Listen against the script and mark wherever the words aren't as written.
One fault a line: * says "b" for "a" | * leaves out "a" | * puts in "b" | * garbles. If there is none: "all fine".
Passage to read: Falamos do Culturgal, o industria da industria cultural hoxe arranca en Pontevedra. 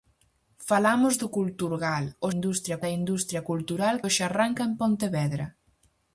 all fine